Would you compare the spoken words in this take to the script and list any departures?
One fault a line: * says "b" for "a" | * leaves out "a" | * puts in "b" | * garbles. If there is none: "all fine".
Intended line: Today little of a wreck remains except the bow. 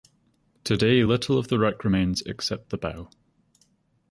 * says "the" for "a"